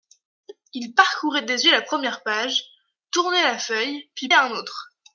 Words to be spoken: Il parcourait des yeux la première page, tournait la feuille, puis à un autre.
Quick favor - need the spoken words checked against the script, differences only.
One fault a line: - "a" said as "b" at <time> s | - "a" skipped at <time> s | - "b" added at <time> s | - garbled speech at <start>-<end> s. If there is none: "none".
none